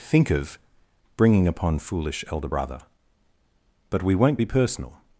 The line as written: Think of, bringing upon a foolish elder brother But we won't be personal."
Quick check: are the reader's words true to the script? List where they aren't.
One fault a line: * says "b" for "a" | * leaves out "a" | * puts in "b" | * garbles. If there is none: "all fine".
* leaves out "a"